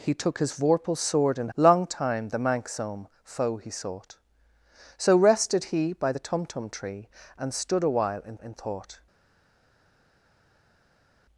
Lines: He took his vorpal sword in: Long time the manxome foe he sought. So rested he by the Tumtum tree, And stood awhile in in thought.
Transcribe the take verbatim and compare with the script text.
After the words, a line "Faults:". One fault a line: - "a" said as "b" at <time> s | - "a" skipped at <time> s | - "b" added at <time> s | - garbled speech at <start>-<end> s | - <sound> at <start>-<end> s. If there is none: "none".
He took his vorpal sword in: Long time the manxome foe he sought. So rested he by the Tumtum tree, And stood awhile in in thought.
Faults:
none